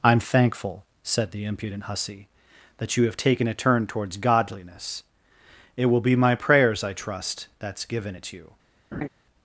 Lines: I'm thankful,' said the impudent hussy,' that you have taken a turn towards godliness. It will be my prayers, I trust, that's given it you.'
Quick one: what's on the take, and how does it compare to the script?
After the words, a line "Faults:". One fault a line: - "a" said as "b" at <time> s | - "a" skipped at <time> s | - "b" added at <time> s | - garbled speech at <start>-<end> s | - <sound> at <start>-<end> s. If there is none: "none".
I'm thankful,' said the impudent hussy,' that you have taken a turn towards godliness. It will be my prayers, I trust, that's given it you.'
Faults:
- laugh at 8.9-9.1 s